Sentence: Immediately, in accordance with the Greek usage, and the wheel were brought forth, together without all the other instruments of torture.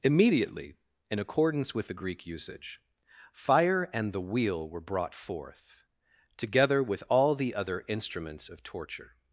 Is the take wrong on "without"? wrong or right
wrong